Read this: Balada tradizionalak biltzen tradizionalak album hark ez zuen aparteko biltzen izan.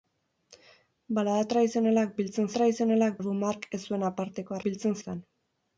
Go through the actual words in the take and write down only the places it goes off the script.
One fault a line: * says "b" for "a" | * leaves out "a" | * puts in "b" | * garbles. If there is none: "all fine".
all fine